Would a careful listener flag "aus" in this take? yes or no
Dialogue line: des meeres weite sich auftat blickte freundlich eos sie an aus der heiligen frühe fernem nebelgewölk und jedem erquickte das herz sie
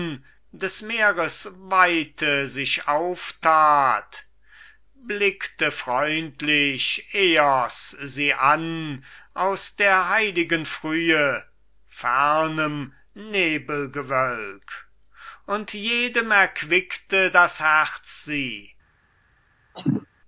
no